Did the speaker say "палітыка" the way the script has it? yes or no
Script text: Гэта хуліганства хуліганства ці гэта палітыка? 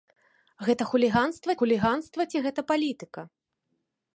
yes